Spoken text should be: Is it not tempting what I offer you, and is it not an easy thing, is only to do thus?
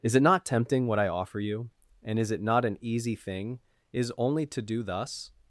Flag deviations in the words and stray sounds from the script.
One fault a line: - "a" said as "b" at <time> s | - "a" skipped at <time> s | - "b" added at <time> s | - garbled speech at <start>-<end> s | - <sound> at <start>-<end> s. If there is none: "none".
none